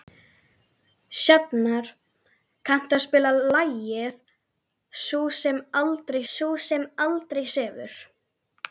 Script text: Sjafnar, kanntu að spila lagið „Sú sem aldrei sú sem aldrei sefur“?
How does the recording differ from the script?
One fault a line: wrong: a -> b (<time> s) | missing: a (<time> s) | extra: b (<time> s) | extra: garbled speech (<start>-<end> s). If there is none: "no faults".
no faults